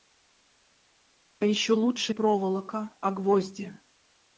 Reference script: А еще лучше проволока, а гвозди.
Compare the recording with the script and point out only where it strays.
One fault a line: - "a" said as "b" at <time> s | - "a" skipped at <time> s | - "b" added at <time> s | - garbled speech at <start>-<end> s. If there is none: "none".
none